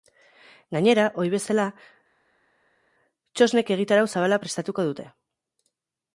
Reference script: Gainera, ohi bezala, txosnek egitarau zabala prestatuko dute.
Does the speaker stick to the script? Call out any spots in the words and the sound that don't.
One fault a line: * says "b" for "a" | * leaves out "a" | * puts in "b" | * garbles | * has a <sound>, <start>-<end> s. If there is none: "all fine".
all fine